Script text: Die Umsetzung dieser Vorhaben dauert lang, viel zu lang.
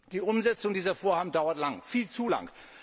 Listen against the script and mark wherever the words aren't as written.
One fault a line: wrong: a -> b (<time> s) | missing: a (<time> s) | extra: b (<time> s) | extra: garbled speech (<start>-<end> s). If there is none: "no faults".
no faults